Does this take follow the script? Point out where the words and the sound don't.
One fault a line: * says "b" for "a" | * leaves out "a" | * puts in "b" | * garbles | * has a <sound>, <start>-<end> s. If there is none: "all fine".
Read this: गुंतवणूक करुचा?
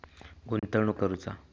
* has a dropout, 0.6-0.6 s